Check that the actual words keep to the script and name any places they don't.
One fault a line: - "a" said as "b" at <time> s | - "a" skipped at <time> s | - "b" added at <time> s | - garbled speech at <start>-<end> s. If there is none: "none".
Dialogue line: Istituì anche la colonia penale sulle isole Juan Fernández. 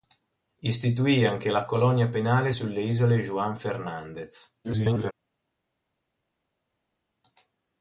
- garbled speech at 4.6-5.1 s